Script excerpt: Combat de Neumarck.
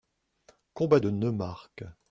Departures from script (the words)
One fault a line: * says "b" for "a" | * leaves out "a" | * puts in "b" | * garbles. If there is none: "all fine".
all fine